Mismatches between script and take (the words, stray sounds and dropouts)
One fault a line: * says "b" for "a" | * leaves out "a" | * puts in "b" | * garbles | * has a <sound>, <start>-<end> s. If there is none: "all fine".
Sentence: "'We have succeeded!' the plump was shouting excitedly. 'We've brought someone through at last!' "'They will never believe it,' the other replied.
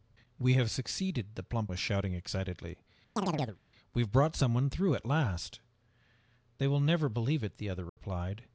* has a chirp, 3.2-3.6 s
* has a dropout, 7.9-8.0 s